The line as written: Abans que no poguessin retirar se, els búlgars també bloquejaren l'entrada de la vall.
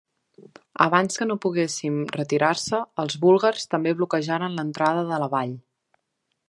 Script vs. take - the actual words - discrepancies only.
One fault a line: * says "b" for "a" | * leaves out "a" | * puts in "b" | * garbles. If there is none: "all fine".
all fine